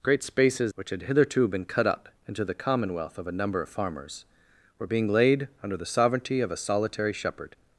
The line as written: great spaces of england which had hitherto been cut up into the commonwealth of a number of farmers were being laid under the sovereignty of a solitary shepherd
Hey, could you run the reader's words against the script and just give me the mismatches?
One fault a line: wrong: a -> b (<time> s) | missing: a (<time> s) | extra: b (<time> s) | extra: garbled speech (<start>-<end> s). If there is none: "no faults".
missing: of england (0.7 s)